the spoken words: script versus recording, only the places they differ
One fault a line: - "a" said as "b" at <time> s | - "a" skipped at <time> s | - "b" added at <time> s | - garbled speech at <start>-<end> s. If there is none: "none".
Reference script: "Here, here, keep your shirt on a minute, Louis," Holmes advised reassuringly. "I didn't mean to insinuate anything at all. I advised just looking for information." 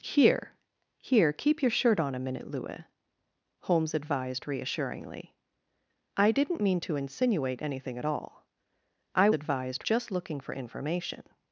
none